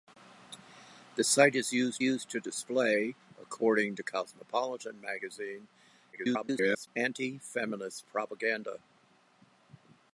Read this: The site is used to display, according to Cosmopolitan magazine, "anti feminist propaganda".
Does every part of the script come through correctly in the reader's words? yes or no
no